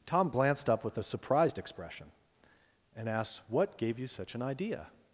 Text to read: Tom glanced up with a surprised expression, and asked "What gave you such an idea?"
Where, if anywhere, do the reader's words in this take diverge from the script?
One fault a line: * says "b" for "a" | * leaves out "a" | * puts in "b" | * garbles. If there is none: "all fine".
all fine